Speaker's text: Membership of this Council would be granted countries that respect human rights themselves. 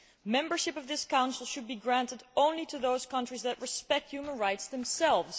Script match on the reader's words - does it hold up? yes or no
no